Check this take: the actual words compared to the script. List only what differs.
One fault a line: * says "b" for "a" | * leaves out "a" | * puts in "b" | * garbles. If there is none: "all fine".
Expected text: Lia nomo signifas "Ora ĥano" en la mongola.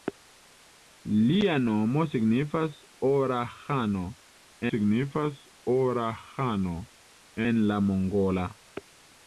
* puts in "signifas Ora ĥano"